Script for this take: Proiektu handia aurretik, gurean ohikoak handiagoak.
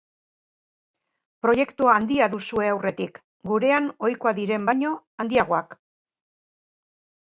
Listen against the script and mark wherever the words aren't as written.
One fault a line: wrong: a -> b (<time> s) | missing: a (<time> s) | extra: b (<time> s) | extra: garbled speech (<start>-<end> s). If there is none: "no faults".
extra: duzue (2.4 s)
extra: diren baino (4.4 s)